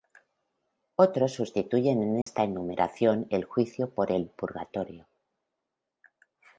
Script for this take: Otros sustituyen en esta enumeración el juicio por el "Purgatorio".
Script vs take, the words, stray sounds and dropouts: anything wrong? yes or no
yes